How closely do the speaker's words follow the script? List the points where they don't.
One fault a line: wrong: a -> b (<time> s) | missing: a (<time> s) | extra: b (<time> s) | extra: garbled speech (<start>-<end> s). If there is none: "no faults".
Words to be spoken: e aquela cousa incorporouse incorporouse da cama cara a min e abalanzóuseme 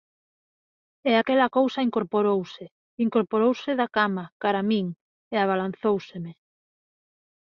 no faults